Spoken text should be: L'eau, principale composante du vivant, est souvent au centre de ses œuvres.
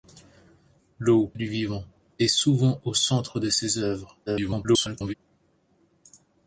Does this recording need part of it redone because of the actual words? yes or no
yes